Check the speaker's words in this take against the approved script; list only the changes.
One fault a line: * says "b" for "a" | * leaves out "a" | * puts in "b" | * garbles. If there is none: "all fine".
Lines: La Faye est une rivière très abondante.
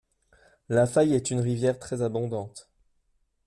all fine